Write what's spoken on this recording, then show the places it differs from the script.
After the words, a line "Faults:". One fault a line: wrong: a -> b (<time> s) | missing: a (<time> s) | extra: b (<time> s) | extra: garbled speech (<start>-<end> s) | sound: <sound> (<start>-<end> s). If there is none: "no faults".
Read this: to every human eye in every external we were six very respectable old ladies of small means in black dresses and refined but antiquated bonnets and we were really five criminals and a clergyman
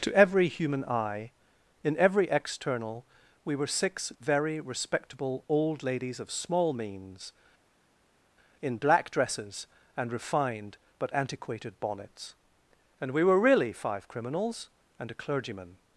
to every human eye in every external we were six very respectable old ladies of small means in black dresses and refined but antiquated bonnets and we were really five criminals and a clergyman
Faults:
no faults